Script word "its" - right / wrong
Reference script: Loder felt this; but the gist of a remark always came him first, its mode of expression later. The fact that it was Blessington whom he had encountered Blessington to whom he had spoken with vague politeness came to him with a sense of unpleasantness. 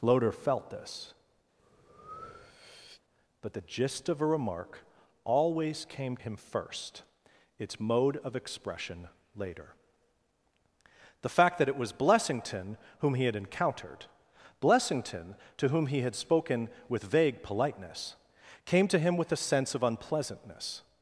right